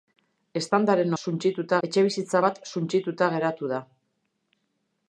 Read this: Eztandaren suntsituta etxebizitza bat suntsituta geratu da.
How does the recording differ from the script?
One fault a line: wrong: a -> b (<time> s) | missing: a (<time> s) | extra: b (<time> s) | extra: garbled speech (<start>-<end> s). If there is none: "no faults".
no faults